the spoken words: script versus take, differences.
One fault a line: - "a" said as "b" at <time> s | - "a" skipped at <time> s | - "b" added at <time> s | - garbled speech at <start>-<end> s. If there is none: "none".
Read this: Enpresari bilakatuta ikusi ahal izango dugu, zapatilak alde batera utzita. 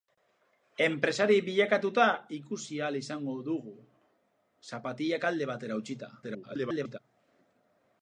- garbled speech at 6.2-7.0 s